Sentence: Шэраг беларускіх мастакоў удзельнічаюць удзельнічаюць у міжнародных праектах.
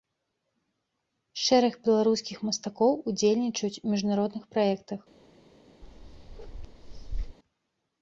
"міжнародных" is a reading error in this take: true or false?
false